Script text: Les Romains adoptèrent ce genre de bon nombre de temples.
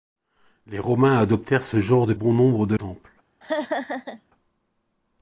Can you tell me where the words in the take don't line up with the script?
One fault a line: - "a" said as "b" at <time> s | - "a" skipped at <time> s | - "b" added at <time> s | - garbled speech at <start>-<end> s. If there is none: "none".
none